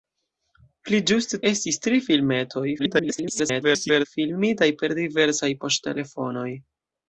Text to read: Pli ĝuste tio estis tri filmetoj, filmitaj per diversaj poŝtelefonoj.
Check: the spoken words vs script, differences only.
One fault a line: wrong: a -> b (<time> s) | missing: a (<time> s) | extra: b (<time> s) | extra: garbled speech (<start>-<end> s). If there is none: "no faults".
missing: tio (1.4 s)
extra: garbled speech (2.8-4.1 s)